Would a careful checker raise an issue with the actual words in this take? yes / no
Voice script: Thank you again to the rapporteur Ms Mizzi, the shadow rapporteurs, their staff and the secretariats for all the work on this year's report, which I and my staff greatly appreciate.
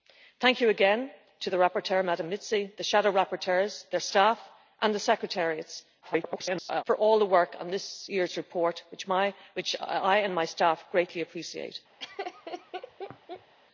yes